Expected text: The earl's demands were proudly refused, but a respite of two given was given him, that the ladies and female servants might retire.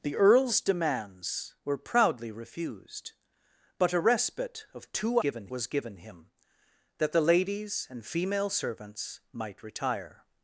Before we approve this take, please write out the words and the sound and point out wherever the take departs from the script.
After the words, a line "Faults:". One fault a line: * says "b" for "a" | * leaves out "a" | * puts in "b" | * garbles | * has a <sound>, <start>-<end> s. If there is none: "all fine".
The earl's demands were proudly refused, but a respite of two given was given him, that the ladies and female servants might retire.
Faults:
all fine